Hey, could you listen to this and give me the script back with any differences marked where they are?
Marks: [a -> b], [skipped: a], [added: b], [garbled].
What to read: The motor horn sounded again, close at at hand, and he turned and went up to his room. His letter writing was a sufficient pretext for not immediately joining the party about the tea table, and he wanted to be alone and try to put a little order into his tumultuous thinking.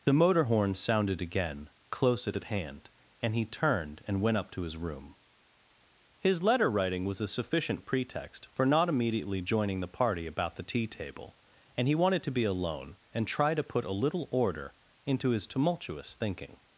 The motor horn sounded again, close at at hand, and he turned and went up to his room. His letter writing was a sufficient pretext for not immediately joining the party about the tea table, and he wanted to be alone and try to put a little order into his tumultuous thinking.